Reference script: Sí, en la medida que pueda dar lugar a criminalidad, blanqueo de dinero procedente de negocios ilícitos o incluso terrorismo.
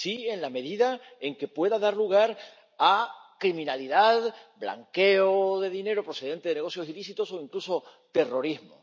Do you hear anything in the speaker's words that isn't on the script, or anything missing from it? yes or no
yes